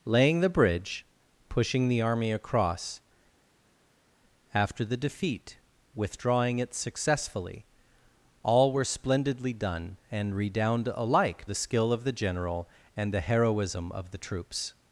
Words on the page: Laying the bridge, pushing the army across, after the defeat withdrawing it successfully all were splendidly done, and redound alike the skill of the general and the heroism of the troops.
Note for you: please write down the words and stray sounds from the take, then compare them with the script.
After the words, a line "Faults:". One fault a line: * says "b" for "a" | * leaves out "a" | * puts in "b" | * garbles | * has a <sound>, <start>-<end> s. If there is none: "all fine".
Laying the bridge, pushing the army across, after the defeat withdrawing it successfully all were splendidly done, and redound alike the skill of the general and the heroism of the troops.
Faults:
all fine